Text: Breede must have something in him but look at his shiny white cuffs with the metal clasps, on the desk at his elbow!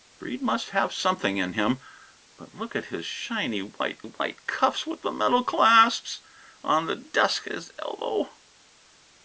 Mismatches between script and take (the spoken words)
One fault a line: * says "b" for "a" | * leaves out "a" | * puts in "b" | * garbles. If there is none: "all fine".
* puts in "white"
* leaves out "at"